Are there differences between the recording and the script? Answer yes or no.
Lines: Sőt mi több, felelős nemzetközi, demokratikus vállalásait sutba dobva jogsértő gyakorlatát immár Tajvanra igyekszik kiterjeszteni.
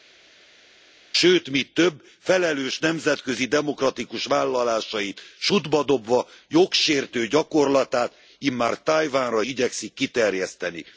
no